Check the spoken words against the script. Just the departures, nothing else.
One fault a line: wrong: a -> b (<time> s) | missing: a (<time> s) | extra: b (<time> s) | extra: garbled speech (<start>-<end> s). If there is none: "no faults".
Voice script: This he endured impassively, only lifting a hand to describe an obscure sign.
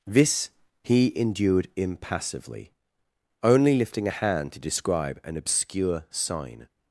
no faults